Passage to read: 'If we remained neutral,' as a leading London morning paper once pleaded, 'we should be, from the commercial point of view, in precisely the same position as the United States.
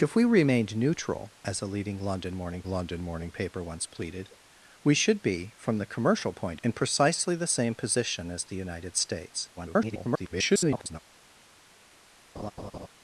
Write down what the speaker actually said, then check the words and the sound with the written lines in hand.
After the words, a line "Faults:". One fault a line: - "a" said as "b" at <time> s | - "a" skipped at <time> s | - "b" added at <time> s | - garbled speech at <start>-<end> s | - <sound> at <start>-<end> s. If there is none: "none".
'If we remained neutral,' as a leading London morning London morning paper once pleaded, 'we should be, from the commercial point in precisely the same position as the United States. [garbled]
Faults:
- "London morning" added at 2.6 s
- "of view" skipped at 6.6 s
- garbled speech at 9.6-11.0 s
- laugh at 12.4-12.9 s